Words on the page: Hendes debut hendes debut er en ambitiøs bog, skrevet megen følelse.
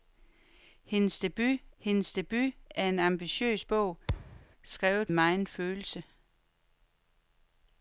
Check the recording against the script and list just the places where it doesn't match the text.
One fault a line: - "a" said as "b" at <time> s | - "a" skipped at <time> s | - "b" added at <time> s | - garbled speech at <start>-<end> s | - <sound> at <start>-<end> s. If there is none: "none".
- thud at 4.1-4.5 s